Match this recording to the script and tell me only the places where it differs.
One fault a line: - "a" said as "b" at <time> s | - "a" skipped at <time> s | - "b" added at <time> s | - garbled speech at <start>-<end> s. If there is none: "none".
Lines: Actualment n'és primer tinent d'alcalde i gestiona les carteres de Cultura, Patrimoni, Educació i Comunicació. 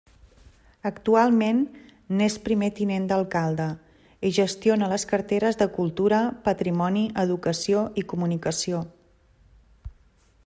none